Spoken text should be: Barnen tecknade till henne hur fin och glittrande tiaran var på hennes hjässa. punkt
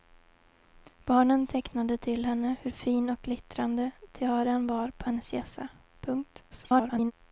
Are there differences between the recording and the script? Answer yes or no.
yes